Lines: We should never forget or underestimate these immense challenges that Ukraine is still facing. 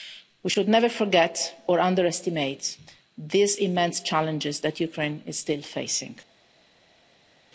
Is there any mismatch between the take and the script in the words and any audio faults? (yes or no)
no